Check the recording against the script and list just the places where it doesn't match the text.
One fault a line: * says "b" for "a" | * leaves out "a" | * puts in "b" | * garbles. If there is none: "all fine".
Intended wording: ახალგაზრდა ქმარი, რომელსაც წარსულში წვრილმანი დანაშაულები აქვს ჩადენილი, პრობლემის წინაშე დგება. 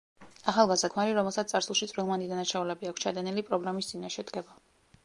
all fine